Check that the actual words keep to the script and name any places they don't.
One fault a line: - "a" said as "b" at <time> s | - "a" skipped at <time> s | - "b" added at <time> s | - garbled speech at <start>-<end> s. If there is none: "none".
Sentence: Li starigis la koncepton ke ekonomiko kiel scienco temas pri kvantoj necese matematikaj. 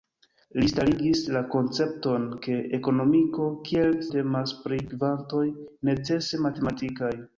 - "scienco" skipped at 3.9 s